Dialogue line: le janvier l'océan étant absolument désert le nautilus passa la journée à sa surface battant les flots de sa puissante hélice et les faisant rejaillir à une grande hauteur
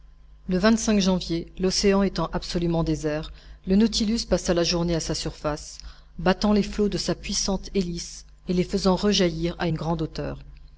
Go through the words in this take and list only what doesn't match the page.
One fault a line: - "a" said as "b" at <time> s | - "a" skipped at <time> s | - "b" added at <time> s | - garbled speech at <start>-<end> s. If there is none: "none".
none